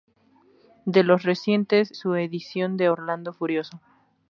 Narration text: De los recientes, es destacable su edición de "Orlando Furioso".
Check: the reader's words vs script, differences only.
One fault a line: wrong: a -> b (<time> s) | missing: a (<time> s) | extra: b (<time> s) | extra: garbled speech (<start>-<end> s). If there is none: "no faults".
missing: es destacable (1.9 s)